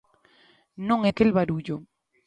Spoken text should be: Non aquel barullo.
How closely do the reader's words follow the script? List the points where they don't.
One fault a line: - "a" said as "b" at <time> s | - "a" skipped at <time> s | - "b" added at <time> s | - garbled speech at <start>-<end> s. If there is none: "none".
none